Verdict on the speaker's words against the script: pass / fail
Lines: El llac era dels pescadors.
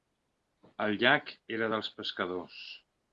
pass